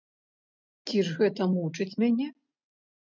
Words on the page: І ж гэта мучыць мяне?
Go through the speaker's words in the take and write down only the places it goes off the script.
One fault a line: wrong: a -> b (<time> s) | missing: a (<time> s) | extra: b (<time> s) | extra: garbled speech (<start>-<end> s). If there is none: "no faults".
wrong: І -> Ці (0.9 s)